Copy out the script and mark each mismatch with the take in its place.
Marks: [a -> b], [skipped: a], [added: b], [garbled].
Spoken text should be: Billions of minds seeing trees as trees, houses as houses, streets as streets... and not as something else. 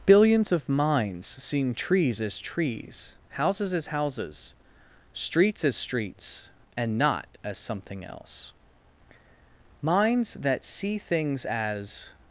Billions of minds seeing trees as trees, houses as houses, streets as streets... and not as something else. [added: Minds that see things as]